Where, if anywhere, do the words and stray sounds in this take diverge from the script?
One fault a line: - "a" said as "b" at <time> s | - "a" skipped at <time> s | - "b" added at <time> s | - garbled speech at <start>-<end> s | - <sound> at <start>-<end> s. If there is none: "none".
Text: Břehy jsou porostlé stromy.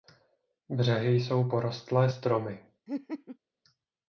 - laugh at 2.9-3.4 s